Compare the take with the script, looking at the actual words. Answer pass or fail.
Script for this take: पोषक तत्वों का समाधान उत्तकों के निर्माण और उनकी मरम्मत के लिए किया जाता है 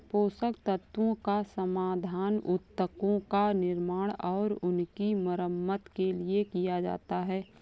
fail